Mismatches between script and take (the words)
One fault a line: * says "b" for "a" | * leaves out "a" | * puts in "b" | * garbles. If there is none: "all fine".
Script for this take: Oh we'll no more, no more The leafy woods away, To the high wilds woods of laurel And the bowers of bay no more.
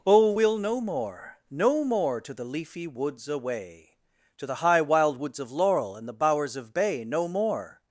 * puts in "To"
* says "wild" for "wilds"